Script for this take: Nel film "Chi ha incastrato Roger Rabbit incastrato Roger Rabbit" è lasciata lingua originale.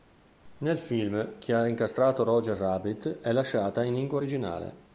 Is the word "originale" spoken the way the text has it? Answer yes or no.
yes